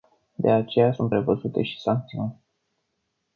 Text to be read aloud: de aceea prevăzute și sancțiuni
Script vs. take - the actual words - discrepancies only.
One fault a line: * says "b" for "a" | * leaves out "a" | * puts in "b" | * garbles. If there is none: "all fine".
* puts in "sunt"